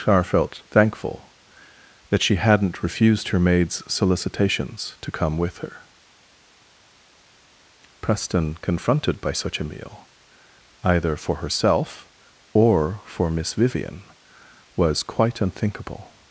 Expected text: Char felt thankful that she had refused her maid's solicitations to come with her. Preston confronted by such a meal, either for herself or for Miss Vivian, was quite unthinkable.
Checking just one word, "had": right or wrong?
wrong